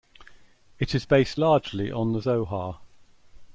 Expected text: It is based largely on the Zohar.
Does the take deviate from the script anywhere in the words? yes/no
no